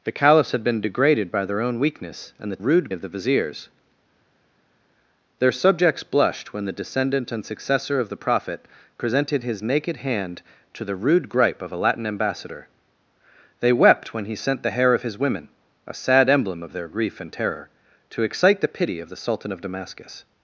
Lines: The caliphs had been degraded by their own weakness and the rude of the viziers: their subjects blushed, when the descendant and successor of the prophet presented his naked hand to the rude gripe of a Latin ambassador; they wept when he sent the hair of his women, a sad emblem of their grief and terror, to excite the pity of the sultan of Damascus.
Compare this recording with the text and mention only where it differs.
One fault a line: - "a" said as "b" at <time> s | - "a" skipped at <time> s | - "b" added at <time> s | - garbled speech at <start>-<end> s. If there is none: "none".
none